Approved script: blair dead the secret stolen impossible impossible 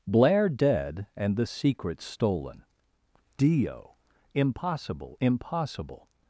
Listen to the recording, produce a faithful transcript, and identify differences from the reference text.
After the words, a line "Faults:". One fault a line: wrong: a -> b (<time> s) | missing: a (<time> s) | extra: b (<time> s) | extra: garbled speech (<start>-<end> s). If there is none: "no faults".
blair dead and the secret stolen dio impossible impossible
Faults:
extra: and (1.1 s)
extra: dio (3.4 s)